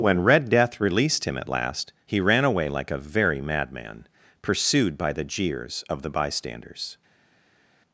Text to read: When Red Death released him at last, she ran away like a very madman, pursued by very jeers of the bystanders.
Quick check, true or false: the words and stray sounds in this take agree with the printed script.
false